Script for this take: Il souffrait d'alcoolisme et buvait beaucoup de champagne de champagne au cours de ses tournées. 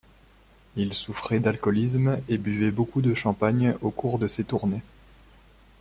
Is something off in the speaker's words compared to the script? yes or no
yes